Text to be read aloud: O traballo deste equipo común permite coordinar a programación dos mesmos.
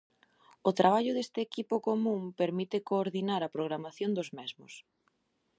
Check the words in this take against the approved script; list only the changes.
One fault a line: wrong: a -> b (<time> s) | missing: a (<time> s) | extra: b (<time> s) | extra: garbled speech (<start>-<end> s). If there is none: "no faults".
no faults